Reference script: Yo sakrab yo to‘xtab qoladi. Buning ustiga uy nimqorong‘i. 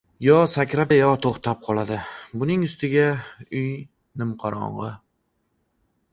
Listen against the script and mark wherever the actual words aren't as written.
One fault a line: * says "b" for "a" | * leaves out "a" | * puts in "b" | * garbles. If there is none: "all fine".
all fine